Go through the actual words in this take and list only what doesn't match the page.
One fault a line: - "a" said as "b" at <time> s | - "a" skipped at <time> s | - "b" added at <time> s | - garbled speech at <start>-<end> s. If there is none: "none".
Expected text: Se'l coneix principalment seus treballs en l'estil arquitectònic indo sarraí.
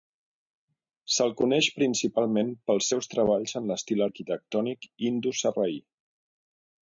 - "pels" added at 2.7 s